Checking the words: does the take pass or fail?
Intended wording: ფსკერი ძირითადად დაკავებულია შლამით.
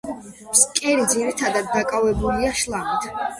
pass